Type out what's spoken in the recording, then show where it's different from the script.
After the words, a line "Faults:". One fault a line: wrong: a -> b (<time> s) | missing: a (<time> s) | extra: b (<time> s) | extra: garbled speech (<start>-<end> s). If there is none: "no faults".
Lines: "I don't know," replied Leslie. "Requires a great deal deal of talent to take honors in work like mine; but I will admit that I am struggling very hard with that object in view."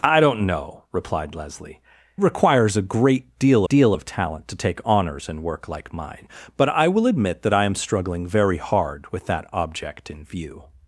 "I don't know," replied Leslie. "Requires a great deal deal of talent to take honors in work like mine; but I will admit that I am struggling very hard with that object in view."
Faults:
no faults